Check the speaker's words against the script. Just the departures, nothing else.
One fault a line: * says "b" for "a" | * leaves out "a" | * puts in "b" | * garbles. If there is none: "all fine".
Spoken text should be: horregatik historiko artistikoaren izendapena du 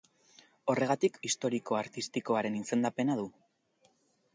all fine